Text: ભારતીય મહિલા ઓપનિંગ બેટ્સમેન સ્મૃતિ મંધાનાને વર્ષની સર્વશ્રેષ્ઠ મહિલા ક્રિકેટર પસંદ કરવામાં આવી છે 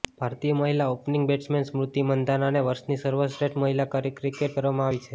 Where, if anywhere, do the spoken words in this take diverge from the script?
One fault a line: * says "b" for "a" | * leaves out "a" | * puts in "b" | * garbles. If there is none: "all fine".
* leaves out "પસંદ"